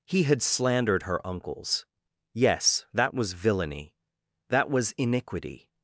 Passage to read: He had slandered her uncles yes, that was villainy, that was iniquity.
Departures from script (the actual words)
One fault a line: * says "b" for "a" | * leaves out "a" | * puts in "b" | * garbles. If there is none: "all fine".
all fine